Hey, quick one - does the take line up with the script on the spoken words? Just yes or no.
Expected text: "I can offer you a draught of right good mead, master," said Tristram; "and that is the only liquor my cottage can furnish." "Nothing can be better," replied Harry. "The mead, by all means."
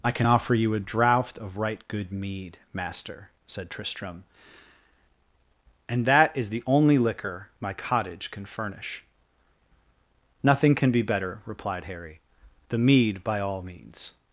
yes